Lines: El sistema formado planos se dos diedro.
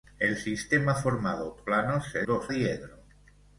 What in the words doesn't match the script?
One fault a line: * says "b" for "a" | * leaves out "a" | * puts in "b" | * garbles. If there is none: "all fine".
all fine